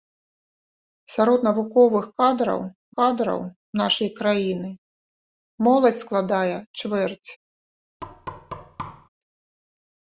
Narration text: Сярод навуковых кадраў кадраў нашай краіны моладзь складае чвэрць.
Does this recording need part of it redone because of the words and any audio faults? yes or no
yes